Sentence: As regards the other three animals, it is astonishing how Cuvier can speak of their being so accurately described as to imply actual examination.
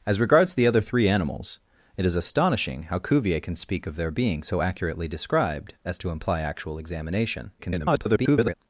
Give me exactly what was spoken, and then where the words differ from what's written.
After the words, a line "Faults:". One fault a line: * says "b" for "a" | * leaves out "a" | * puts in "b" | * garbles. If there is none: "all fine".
As regards the other three animals, it is astonishing how Cuvier can speak of their being so accurately described as to imply actual examination. [garbled]
Faults:
* garbles